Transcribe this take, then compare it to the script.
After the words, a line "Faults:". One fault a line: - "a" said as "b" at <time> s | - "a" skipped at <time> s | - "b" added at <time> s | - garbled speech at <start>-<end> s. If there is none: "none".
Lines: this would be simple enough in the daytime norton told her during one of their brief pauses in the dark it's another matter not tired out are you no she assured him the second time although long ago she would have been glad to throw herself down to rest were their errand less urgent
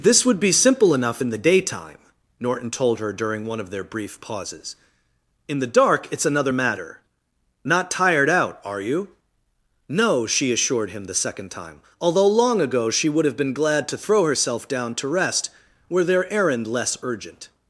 this would be simple enough in the daytime norton told her during one of their brief pauses in the dark it's another matter not tired out are you no she assured him the second time although long ago she would have been glad to throw herself down to rest were their errand less urgent
Faults:
none